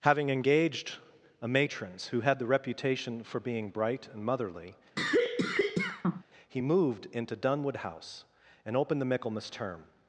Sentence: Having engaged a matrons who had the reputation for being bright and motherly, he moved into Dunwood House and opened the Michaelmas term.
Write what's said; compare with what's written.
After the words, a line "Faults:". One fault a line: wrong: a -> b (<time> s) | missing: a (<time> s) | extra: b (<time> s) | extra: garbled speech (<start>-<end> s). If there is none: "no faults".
Having engaged a matrons who had the reputation for being bright and motherly, he moved into Dunwood House and opened the Michaelmas term.
Faults:
no faults